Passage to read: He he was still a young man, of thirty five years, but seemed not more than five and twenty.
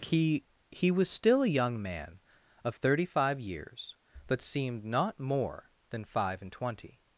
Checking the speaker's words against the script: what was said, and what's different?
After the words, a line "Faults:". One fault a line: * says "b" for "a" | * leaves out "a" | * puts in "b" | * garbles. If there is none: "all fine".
He he was still a young man, of thirty five years, but seemed not more than five and twenty.
Faults:
all fine